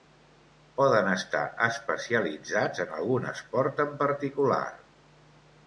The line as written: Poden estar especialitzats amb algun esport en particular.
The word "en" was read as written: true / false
true